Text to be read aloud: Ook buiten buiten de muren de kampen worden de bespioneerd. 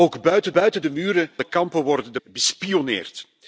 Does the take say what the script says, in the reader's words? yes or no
yes